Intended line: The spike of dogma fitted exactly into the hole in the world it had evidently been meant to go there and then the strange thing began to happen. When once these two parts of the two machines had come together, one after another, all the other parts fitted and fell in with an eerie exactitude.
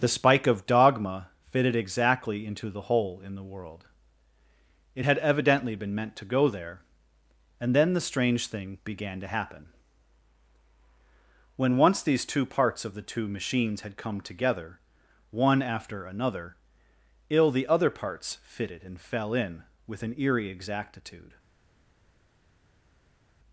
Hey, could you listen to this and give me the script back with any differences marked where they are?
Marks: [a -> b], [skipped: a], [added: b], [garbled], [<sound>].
The spike of dogma fitted exactly into the hole in the world it had evidently been meant to go there and then the strange thing began to happen. When once these two parts of the two machines had come together, one after another, [all -> ill] the other parts fitted and fell in with an eerie exactitude.